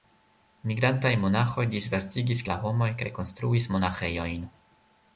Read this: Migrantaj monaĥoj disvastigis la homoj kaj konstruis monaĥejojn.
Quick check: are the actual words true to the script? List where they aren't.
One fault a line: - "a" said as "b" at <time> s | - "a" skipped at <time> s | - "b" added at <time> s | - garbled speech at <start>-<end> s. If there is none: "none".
none